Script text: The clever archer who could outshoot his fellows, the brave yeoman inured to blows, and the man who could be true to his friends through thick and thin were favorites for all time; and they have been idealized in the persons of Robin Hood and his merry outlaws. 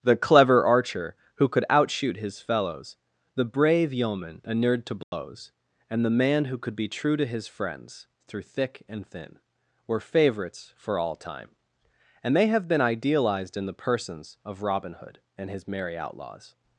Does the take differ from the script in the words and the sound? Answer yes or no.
yes